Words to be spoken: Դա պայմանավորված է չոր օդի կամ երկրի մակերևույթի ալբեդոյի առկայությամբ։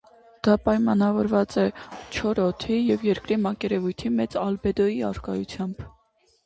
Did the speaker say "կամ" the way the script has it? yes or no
no